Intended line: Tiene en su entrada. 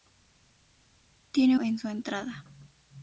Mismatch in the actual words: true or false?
false